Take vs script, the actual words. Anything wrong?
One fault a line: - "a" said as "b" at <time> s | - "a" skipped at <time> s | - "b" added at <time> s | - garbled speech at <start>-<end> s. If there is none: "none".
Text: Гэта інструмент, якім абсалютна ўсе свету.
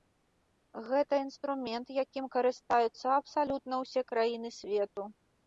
- "карыстаюцца" added at 2.4 s
- "краіны" added at 4.2 s